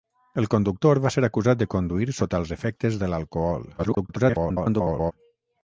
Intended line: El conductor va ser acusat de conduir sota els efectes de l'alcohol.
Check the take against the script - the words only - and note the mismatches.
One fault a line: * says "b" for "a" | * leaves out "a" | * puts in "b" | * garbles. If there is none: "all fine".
* garbles